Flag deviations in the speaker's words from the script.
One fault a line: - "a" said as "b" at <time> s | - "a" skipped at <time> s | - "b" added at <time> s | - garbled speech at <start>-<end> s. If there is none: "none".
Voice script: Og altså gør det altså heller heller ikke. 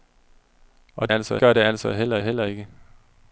none